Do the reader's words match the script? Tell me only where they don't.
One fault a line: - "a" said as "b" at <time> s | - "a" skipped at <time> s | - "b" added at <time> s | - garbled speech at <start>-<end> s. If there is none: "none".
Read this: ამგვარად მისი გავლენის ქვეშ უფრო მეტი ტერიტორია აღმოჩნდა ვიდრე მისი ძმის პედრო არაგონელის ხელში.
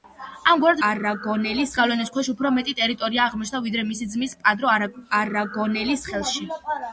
- "მისი" said as "არაგონელის" at 0.9 s